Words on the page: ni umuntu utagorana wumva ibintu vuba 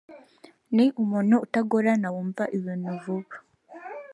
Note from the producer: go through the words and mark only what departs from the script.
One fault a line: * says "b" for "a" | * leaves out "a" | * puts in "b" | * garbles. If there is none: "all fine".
all fine